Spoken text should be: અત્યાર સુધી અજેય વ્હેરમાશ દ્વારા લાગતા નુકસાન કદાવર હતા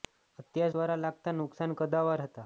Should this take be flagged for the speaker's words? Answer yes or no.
yes